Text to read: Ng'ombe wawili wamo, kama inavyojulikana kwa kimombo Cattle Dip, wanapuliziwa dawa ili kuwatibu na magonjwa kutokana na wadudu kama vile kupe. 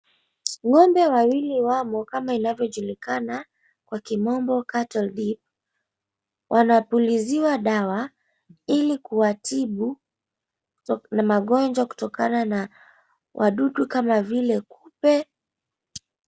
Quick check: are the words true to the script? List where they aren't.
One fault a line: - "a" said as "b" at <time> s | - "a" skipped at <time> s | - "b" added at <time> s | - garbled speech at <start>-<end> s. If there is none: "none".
none